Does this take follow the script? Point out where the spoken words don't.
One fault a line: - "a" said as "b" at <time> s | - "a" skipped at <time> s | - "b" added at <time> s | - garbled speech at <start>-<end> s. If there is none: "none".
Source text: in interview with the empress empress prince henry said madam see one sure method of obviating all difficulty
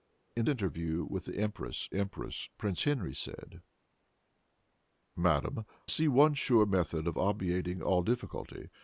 none